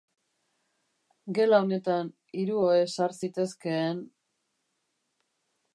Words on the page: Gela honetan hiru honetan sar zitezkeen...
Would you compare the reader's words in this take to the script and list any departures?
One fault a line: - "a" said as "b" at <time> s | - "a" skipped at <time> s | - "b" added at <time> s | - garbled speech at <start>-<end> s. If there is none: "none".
- "honetan" said as "ohe" at 2.7 s